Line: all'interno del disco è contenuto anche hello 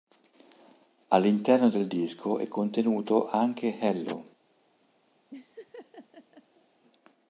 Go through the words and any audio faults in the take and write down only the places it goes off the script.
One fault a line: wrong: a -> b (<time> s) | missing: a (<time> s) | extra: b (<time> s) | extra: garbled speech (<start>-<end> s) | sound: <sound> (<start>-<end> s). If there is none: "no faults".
sound: laugh (5.3-6.7 s)